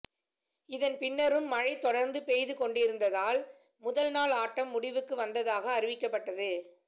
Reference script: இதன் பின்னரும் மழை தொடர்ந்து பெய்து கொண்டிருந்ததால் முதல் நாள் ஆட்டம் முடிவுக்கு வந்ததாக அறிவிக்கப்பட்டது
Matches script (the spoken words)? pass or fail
pass